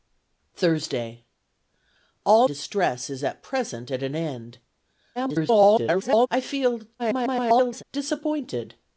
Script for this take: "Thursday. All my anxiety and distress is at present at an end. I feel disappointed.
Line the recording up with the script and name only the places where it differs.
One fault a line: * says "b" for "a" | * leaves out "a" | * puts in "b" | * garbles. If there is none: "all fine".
* leaves out "my anxiety and"
* garbles
* garbles